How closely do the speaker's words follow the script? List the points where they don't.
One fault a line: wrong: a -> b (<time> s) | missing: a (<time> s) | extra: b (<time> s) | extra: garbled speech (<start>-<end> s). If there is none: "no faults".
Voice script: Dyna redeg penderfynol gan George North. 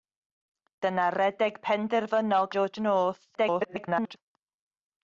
missing: gan (2.5 s)
extra: garbled speech (3.3-4.2 s)